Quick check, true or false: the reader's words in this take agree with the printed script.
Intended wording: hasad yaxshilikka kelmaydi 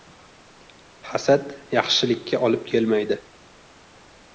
false